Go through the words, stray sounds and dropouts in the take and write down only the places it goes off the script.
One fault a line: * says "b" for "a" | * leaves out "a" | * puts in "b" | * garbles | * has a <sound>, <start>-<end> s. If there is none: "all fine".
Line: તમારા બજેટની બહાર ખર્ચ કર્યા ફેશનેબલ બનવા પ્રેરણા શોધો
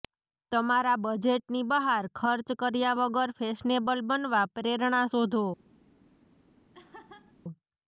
* puts in "વગર"
* has a laugh, 6.7-7.3 s